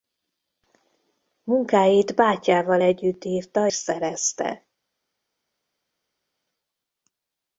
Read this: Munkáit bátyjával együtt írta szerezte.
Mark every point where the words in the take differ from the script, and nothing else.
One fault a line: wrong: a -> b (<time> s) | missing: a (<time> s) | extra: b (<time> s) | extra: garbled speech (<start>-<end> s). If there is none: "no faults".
no faults